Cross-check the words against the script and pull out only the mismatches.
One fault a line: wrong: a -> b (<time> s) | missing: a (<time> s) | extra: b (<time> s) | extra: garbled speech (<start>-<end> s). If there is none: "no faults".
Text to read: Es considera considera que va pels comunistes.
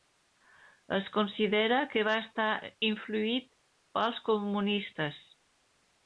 missing: considera (1.8 s)
extra: estar influït (2.2 s)